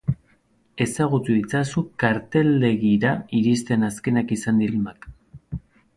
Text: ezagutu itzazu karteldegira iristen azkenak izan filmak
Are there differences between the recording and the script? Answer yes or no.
no